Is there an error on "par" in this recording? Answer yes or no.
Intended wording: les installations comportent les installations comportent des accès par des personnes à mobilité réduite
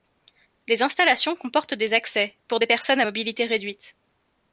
yes